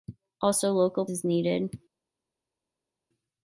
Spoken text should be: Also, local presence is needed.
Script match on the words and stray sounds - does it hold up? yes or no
no